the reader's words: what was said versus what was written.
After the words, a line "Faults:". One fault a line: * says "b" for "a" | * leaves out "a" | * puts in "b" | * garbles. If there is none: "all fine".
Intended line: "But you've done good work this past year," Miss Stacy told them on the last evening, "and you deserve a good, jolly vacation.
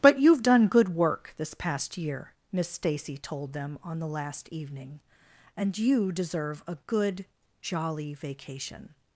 "But you've done good work this past year," Miss Stacy told them on the last evening, "and you deserve a good, jolly vacation.
Faults:
all fine